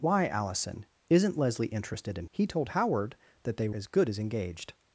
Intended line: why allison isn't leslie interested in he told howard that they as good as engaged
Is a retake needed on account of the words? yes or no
no